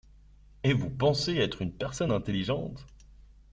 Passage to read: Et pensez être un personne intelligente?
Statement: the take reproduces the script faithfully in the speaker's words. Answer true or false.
false